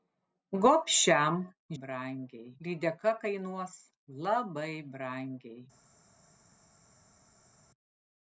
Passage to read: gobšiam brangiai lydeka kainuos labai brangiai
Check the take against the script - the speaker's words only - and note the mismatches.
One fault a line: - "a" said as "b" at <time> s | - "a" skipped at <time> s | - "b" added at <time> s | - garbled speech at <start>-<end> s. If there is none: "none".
none